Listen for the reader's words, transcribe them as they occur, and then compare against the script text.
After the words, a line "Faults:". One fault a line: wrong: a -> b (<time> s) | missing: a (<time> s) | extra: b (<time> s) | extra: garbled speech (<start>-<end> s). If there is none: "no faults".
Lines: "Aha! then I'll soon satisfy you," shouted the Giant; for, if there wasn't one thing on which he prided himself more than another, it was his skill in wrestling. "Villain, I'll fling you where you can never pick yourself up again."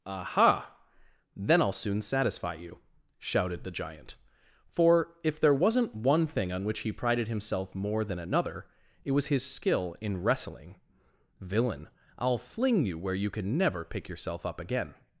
"Aha! then I'll soon satisfy you," shouted the Giant; for, if there wasn't one thing on which he prided himself more than another, it was his skill in wrestling. "Villain, I'll fling you where you can never pick yourself up again."
Faults:
no faults